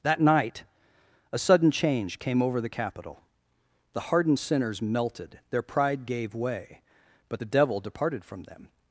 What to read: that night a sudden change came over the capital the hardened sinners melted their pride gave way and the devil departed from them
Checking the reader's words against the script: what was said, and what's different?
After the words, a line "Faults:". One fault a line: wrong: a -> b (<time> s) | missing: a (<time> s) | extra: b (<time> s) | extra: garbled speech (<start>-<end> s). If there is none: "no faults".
that night a sudden change came over the capital the hardened sinners melted their pride gave way but the devil departed from them
Faults:
wrong: and -> but (7.3 s)